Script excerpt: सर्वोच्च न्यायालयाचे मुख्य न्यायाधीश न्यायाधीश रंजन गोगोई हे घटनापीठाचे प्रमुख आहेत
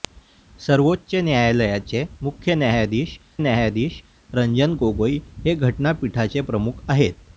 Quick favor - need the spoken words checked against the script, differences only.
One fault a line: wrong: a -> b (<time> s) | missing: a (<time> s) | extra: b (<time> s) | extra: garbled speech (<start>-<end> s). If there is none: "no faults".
no faults